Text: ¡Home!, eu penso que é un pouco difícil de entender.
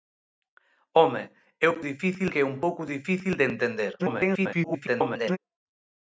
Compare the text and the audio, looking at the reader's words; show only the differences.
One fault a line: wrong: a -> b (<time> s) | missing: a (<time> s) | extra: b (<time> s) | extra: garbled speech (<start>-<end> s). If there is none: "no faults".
wrong: penso -> difícil (1.9 s)
extra: garbled speech (4.0-5.4 s)